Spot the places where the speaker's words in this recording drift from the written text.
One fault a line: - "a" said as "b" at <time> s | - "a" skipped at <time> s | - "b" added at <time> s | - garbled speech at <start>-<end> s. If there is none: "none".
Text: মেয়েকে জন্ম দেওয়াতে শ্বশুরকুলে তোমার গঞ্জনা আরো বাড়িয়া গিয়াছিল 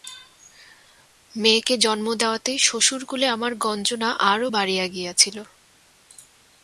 - "তোমার" said as "আমার" at 3.3 s